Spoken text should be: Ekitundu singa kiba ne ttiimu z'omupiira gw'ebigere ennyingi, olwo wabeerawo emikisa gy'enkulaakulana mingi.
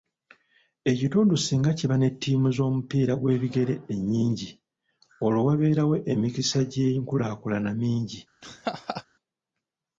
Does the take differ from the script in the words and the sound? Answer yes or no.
yes